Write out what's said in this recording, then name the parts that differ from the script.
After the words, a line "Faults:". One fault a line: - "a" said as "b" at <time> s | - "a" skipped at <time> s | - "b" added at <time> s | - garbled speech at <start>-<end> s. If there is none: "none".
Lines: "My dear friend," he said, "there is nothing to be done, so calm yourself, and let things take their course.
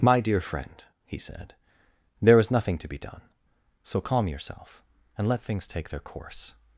"My dear friend," he said, "there is nothing to be done, so calm yourself, and let things take their course.
Faults:
none